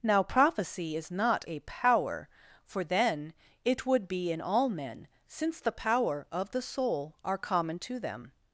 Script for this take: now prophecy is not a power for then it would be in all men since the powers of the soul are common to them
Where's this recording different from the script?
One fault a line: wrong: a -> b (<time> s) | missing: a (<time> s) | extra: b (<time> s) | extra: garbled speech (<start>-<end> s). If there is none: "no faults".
wrong: powers -> power (5.7 s)